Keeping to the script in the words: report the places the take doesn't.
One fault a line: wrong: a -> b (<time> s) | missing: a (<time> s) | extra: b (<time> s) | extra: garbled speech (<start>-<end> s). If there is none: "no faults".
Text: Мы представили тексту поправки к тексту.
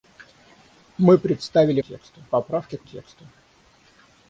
no faults